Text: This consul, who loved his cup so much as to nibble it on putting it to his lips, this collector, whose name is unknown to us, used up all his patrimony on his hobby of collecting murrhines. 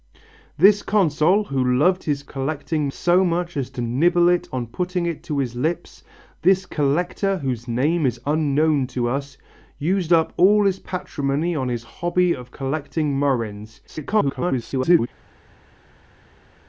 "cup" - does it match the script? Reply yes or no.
no